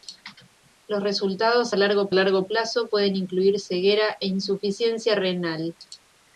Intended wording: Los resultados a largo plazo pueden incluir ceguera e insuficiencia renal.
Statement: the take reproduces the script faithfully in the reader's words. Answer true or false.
false